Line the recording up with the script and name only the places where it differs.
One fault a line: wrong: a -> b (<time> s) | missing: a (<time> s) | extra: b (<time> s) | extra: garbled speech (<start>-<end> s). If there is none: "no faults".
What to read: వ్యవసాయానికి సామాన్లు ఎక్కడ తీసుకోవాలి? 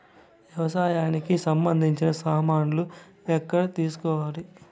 extra: సంబంధించిన (1.4 s)